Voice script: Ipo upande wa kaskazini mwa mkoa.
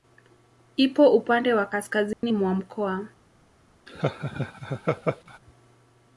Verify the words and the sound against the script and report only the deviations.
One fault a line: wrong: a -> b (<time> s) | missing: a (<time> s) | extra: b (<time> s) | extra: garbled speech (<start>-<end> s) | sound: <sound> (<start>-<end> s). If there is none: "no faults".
sound: dropout (2.1-2.2 s)
sound: laugh (3.9-5.4 s)